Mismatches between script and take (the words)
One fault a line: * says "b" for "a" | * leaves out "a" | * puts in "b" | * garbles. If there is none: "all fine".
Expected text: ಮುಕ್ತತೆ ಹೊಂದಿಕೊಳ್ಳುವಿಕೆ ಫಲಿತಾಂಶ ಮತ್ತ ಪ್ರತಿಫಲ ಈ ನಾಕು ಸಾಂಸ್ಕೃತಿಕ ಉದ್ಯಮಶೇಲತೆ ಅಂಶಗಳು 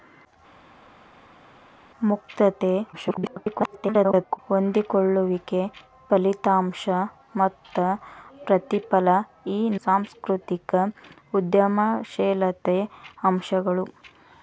* garbles
* leaves out "ನಾಕು"